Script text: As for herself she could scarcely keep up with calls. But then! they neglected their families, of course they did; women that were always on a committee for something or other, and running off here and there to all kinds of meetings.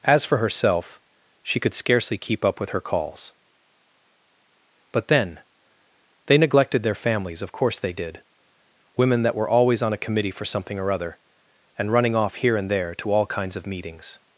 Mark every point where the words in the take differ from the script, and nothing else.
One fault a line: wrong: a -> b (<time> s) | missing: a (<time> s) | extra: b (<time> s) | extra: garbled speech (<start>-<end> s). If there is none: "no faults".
extra: her (2.7 s)